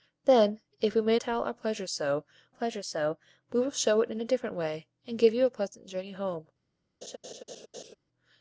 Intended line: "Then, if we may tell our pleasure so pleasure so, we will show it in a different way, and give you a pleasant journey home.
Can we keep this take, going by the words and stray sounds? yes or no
no